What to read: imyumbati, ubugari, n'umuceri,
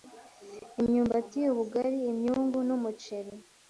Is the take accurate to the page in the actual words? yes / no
no